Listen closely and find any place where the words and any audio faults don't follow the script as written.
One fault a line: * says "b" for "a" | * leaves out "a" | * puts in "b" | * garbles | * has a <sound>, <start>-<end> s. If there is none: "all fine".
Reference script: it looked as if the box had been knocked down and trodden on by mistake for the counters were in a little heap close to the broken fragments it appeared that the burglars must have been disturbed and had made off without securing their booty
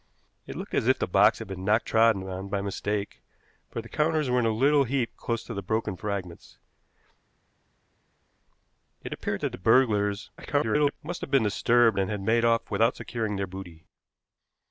* leaves out "down and"
* garbles